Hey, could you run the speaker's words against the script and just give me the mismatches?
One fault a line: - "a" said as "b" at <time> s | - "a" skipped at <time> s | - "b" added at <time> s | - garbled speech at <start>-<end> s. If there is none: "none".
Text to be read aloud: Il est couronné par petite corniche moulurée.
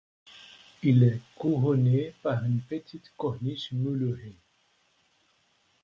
- "une" added at 2.4 s